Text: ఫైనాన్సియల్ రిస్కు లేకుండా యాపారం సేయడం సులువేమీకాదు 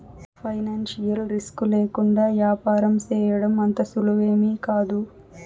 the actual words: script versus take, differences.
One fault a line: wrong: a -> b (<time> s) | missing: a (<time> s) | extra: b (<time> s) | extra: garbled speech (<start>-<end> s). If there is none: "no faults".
extra: అంత (3.6 s)